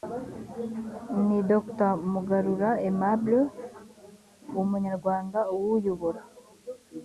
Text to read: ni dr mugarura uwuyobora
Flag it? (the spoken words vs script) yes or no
yes